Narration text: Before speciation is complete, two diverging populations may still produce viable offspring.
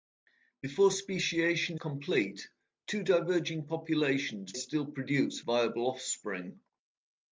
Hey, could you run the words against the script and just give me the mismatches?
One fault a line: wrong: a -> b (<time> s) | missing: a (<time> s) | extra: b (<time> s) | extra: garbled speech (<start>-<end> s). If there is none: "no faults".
missing: is (1.8 s)
missing: may (4.6 s)